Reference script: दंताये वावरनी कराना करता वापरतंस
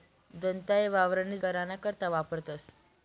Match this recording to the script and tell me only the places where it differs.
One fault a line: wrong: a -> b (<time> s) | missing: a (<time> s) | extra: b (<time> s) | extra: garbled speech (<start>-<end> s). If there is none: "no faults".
no faults